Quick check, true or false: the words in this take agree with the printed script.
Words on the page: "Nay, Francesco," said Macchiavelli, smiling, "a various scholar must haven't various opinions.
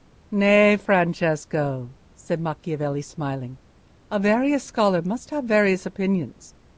false